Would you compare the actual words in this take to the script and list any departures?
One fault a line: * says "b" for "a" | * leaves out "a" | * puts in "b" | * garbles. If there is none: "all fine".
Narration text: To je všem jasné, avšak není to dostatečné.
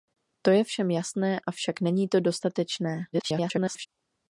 * garbles